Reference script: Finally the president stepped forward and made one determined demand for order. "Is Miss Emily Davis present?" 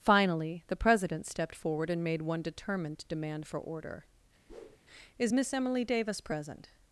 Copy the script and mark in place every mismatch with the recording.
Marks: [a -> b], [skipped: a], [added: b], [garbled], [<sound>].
Finally the president stepped forward and made one determined demand for order. [whoosh] "Is Miss Emily Davis present?"